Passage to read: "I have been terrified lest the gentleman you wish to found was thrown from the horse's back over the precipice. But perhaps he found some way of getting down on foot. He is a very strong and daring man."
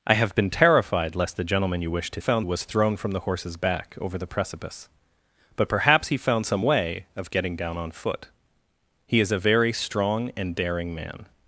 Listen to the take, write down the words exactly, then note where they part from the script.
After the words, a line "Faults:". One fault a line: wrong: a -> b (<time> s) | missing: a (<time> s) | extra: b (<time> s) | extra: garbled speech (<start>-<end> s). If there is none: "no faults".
"I have been terrified lest the gentleman you wish to found was thrown from the horse's back over the precipice. But perhaps he found some way of getting down on foot. He is a very strong and daring man."
Faults:
no faults